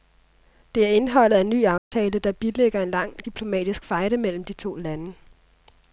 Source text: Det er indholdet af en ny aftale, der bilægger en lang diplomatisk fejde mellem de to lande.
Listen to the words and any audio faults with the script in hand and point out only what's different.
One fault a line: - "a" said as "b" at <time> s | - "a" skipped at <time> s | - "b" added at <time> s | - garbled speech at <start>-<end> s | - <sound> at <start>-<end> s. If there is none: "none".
- dropout at 1.8-1.9 s